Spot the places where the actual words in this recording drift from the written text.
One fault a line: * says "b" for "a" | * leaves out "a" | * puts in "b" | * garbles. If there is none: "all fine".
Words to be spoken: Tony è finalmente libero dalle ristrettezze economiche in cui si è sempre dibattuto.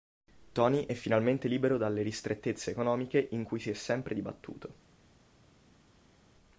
all fine